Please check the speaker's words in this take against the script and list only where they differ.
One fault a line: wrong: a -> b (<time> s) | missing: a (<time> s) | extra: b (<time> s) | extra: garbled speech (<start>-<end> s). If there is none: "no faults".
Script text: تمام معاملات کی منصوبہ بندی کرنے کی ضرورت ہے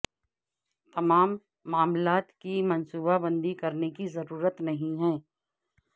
extra: نہیں (4.6 s)